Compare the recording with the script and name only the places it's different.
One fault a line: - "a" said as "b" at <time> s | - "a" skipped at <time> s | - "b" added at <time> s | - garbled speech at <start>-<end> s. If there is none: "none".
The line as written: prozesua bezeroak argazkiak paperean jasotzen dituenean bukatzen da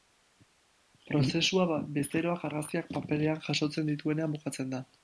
none